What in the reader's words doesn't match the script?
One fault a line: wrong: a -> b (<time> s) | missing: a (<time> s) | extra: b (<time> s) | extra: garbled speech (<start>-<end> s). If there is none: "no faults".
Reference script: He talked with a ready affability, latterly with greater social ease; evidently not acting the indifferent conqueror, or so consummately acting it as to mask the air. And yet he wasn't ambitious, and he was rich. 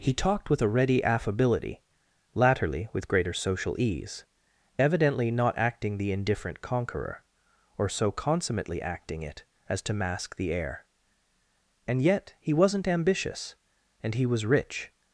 no faults